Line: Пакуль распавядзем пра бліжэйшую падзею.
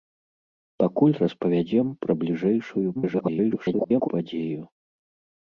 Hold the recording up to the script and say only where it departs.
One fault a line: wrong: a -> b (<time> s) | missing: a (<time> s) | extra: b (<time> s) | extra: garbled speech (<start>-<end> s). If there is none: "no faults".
extra: garbled speech (2.9-4.1 s)